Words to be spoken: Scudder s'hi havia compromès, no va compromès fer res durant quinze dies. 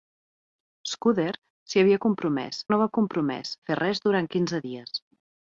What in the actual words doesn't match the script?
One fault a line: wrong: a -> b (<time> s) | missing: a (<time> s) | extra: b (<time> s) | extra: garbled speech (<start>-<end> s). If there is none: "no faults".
no faults